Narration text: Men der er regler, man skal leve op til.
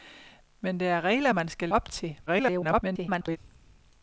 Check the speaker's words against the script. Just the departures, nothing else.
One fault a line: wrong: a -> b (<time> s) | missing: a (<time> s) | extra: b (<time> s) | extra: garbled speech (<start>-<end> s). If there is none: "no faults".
missing: leve (1.7 s)
extra: garbled speech (2.3-3.4 s)